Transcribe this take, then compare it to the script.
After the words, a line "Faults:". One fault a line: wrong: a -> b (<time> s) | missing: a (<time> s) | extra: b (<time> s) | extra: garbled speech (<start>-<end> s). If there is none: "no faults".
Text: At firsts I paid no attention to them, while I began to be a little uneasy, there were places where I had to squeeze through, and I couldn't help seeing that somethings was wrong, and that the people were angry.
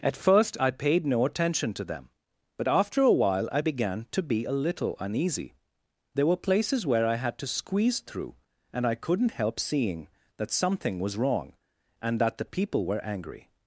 At first I paid no attention to them, but after a while I began to be a little uneasy, there were places where I had to squeeze through, and I couldn't help seeing that something was wrong, and that the people were angry.
Faults:
wrong: firsts -> first (0.2 s)
extra: but after a (2.6 s)
wrong: somethings -> something (10.5 s)